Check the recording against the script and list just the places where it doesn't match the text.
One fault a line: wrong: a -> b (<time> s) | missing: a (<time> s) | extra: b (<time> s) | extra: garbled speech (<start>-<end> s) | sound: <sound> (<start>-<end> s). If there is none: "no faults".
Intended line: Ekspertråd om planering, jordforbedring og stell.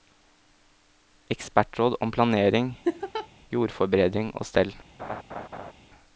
sound: laugh (2.8-3.3 s)
sound: laugh (5.0-5.7 s)